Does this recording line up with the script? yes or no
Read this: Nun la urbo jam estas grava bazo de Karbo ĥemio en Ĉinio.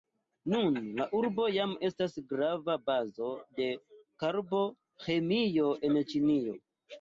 yes